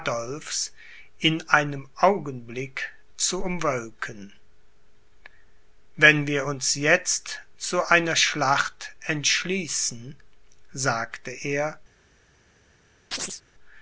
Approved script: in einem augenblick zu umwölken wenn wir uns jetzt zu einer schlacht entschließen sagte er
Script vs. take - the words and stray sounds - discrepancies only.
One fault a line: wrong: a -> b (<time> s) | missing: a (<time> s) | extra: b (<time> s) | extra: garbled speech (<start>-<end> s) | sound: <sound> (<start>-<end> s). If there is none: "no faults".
sound: chirp (13.1-13.4 s)